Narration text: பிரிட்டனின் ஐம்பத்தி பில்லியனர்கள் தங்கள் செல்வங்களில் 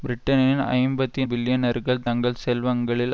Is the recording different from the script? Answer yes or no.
no